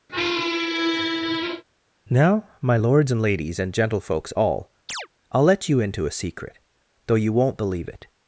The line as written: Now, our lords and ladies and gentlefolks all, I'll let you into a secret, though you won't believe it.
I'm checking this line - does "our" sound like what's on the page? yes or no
no